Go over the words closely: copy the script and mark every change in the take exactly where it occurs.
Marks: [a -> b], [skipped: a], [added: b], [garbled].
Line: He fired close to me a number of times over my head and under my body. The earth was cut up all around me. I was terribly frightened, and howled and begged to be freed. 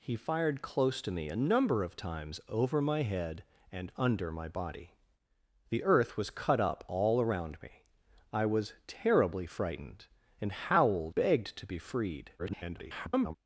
He fired close to me a number of times over my head and under my body. The earth was cut up all around me. I was terribly frightened, and howled [skipped: and] begged to be freed. [garbled]